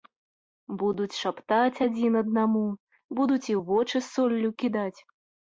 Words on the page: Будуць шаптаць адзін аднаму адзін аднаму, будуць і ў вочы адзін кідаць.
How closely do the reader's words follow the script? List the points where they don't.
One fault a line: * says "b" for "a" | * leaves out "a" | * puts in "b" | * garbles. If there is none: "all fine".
* leaves out "адзін аднаму"
* says "соллю" for "адзін"